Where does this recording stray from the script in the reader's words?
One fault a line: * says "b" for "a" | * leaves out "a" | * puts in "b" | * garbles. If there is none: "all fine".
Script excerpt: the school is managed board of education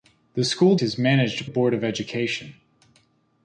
all fine